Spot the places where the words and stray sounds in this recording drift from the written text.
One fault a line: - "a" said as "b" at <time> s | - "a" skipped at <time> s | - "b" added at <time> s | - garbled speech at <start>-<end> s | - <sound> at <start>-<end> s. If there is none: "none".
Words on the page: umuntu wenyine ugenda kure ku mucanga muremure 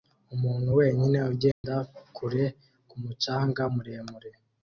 - dropout at 1.5-1.6 s